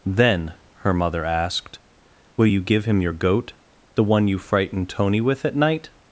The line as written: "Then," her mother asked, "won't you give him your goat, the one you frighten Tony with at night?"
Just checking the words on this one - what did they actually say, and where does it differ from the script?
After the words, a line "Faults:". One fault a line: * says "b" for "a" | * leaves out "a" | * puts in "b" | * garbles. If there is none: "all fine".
"Then," her mother asked, "will you give him your goat, the one you frighten Tony with at night?"
Faults:
* says "will" for "won't"